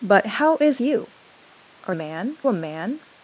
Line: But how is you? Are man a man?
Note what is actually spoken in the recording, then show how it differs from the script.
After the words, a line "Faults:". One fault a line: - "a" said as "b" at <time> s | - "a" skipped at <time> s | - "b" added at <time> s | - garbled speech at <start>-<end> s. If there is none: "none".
But how is you? Are man a man?
Faults:
none